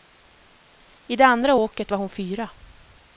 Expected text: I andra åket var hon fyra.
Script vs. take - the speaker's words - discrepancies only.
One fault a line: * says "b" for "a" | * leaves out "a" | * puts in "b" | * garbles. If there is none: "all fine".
* puts in "det"